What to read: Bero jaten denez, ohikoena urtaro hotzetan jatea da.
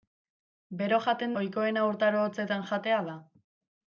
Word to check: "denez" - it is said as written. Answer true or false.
false